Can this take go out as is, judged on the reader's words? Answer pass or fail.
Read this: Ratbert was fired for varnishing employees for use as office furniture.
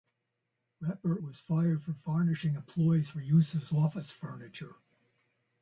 pass